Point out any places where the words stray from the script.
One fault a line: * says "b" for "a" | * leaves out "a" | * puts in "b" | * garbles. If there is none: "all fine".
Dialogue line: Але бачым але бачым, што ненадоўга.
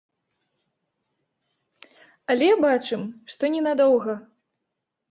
* leaves out "але бачым"